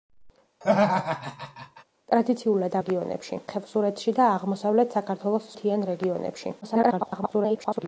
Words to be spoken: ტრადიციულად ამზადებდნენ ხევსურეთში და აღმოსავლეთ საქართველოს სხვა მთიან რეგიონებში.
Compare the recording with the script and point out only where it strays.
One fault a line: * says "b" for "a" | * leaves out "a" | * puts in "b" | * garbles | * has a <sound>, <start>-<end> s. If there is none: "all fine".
* has a laugh, 0.6-1.8 s
* says "რეგიონებში" for "ამზადებდნენ"
* leaves out "სხვა"
* garbles